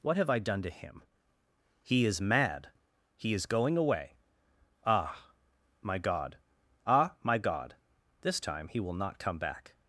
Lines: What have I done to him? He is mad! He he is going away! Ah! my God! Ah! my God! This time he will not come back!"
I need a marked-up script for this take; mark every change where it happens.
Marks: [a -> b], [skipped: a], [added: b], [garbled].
What have I done to him? He is mad! He [skipped: he] is going away! Ah! my God! Ah! my God! This time he will not come back!"